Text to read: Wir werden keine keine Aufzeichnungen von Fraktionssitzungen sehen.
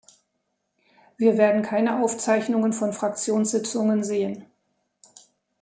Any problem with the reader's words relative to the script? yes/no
yes